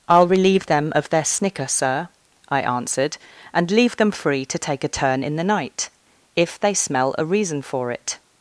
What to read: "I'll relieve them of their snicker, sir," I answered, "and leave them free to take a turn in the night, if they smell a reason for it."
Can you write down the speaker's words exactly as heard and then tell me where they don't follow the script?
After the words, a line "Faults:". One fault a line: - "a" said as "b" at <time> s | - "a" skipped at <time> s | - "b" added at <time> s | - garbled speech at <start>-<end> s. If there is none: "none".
"I'll relieve them of their snicker, sir," I answered, "and leave them free to take a turn in the night, if they smell a reason for it."
Faults:
none